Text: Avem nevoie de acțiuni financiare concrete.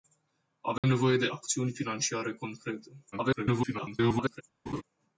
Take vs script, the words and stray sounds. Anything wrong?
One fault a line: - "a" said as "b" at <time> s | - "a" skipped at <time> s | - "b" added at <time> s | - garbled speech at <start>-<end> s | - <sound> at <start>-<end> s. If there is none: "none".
- dropout at 0.8-0.8 s
- garbled speech at 3.1-4.4 s
- laugh at 4.7-4.8 s